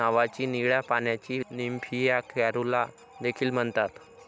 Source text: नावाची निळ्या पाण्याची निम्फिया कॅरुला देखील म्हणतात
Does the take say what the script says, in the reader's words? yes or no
yes